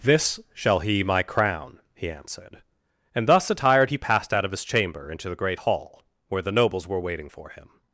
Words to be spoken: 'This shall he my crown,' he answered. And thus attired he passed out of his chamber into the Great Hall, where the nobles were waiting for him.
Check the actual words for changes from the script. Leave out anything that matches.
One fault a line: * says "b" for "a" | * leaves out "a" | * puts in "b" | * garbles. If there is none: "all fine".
all fine